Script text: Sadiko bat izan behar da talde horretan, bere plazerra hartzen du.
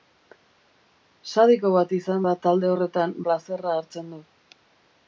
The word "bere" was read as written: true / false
false